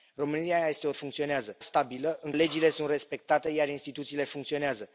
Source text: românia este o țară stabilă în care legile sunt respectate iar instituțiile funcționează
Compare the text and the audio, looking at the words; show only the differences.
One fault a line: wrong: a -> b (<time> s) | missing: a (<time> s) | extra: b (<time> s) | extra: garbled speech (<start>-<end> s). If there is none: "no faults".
wrong: țară -> funcționează (0.9 s)
missing: care (2.3 s)